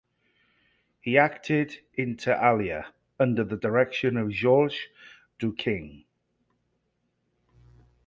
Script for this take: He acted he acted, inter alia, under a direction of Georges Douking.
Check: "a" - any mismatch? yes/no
yes